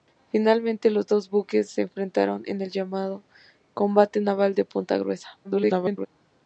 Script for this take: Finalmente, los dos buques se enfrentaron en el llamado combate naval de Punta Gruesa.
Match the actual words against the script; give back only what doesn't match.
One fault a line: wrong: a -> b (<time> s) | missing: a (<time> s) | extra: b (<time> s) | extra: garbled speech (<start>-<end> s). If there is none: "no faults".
extra: garbled speech (5.4-6.1 s)